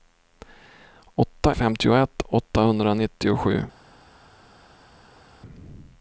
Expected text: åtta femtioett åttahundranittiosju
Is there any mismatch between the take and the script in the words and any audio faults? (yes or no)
no